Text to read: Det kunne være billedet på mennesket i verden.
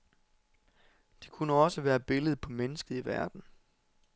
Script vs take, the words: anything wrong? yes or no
yes